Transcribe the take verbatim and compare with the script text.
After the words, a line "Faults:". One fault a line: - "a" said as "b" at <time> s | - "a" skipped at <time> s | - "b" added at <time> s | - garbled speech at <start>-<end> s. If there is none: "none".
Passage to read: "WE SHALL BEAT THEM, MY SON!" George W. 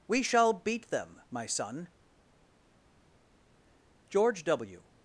"WE SHALL BEAT THEM, MY SON!" George W.
Faults:
none